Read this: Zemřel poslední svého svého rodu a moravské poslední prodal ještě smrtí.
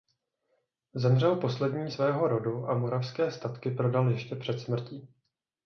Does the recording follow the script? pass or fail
fail